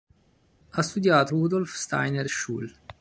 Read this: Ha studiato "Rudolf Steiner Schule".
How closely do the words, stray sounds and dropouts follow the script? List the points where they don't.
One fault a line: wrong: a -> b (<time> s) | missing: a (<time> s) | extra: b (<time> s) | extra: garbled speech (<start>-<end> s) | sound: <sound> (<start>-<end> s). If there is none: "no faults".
no faults